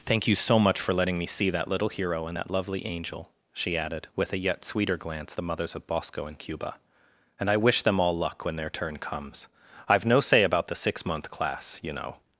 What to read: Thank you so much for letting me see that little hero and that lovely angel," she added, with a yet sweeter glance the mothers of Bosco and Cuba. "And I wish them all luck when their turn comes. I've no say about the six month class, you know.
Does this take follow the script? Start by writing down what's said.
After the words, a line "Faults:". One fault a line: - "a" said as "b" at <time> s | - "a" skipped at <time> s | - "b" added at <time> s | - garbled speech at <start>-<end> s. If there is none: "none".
Thank you so much for letting me see that little hero and that lovely angel," she added, with a yet sweeter glance the mothers of Bosco and Cuba. "And I wish them all luck when their turn comes. I've no say about the six month class, you know.
Faults:
none